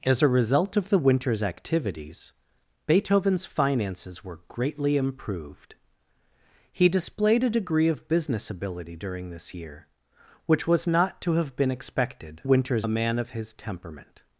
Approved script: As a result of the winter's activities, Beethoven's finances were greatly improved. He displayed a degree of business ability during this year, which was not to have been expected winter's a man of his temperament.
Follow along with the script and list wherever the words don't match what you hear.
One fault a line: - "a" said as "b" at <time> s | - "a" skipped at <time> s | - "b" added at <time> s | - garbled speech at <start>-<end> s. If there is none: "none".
none